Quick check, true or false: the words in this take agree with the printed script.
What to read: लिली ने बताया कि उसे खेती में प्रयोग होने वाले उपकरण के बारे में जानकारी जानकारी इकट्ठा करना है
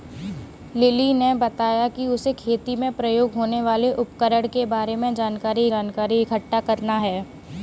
true